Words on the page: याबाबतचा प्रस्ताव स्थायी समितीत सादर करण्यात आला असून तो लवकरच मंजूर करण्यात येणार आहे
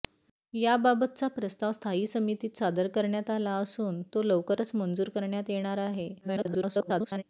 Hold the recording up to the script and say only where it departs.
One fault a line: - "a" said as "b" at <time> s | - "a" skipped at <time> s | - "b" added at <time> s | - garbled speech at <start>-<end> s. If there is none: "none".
- garbled speech at 6.2-7.2 s